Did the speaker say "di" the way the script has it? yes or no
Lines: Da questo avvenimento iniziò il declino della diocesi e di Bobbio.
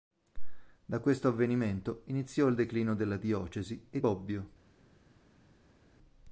no